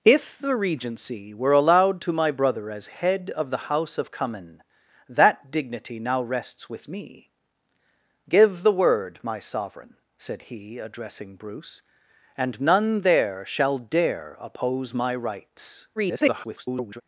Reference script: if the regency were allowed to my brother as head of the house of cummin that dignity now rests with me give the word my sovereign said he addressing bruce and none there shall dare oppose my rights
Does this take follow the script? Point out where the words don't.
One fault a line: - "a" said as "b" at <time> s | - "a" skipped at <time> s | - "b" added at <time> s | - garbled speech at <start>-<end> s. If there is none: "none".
- garbled speech at 16.0-17.0 s